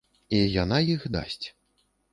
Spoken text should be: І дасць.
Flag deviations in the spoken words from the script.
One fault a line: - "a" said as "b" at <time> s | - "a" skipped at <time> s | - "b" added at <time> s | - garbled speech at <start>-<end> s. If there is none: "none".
- "яна іх" added at 0.6 s